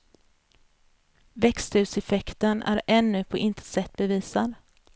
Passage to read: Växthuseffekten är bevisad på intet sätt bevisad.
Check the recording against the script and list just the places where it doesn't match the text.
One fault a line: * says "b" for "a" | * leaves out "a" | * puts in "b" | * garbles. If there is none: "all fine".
* says "ännu" for "bevisad"